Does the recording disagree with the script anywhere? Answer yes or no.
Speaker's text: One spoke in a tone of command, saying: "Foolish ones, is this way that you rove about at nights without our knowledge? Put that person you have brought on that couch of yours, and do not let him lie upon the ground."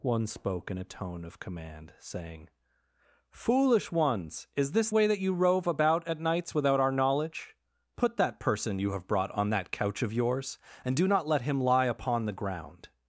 no